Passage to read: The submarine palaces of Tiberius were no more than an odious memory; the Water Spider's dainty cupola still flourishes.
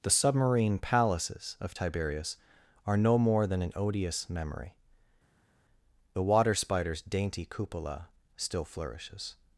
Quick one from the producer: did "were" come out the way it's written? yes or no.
no